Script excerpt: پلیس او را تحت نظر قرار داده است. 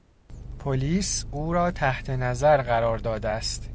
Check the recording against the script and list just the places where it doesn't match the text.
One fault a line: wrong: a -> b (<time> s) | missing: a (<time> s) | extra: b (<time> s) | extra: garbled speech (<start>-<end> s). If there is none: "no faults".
no faults